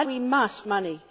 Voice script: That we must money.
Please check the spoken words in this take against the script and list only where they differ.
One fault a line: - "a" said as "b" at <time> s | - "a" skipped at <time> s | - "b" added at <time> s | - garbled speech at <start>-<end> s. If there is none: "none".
none